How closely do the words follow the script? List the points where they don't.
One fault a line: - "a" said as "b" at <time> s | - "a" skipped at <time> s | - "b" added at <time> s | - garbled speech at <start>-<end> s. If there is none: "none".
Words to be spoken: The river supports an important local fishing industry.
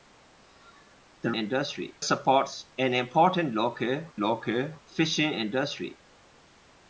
- "river" said as "industry" at 1.3 s
- "local" added at 4.2 s